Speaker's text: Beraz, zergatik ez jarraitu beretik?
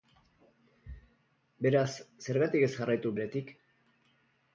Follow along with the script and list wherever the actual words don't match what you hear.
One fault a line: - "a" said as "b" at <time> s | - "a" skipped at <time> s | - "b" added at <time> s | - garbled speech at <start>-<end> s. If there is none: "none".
none